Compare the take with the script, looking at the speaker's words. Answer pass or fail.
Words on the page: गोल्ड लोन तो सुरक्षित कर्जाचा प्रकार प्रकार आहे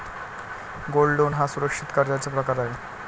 fail